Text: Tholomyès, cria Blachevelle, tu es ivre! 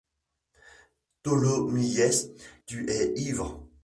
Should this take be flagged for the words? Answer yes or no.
yes